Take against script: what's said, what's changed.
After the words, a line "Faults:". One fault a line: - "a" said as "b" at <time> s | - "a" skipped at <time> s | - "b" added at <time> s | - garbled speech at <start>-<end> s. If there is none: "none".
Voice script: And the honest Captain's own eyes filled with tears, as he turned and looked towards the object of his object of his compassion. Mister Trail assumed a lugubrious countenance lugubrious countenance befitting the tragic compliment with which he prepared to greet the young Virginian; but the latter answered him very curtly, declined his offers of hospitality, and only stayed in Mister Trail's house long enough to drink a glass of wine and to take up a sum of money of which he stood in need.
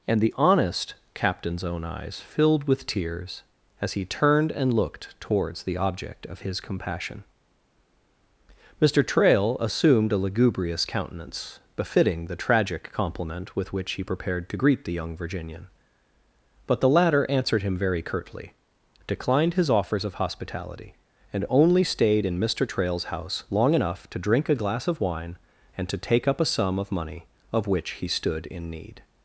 And the honest Captain's own eyes filled with tears, as he turned and looked towards the object of his compassion. Mister Trail assumed a lugubrious countenance befitting the tragic compliment with which he prepared to greet the young Virginian; but the latter answered him very curtly, declined his offers of hospitality, and only stayed in Mister Trail's house long enough to drink a glass of wine and to take up a sum of money of which he stood in need.
Faults:
- "object of his" skipped at 6.6 s
- "lugubrious countenance" skipped at 11.6 s